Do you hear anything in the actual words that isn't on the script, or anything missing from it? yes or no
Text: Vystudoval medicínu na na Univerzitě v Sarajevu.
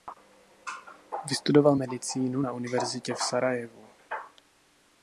yes